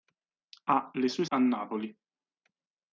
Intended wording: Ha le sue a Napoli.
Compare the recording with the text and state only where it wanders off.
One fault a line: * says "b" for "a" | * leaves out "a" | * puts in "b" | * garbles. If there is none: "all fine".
all fine